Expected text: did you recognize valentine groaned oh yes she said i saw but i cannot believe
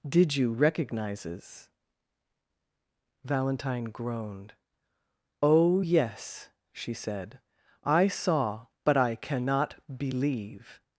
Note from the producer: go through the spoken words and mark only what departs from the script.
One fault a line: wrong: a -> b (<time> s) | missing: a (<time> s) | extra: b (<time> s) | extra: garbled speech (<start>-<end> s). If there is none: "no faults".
wrong: recognize -> recognizes (0.5 s)